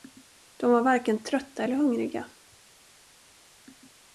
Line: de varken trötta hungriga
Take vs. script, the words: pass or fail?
fail